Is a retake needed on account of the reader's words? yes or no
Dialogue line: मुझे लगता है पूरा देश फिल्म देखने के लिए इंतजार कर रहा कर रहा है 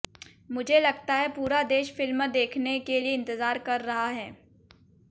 yes